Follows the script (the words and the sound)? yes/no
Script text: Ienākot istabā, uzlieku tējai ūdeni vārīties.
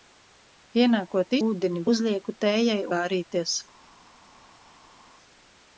no